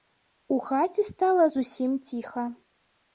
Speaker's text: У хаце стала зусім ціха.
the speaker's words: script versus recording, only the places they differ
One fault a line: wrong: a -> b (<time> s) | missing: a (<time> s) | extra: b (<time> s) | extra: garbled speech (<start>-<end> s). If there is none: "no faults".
no faults